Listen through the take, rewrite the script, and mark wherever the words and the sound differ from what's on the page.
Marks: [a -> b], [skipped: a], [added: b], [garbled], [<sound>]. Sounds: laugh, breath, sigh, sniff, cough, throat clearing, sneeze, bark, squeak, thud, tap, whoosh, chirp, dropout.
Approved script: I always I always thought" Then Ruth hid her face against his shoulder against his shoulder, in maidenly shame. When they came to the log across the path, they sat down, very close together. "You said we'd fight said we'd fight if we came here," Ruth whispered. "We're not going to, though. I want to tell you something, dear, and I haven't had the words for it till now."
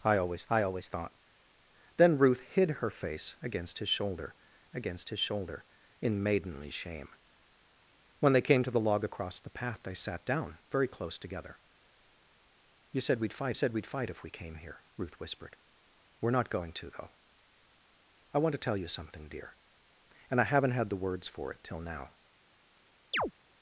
I always I always thought" Then Ruth hid her face against his shoulder against his shoulder, in maidenly shame. When they came to the log across the path, they sat down, very close together. "You said we'd fight said we'd fight if we came here," Ruth whispered. "We're not going to, though. I want to tell you something, dear, and I haven't had the words for it till now." [chirp]